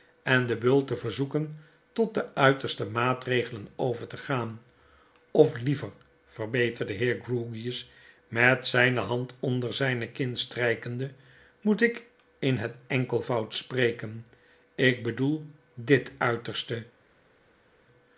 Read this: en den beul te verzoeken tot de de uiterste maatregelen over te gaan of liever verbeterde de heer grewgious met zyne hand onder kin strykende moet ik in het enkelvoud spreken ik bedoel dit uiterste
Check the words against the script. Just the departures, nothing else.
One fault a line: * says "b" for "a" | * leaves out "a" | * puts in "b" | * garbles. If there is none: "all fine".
* leaves out "de"
* puts in "zyne"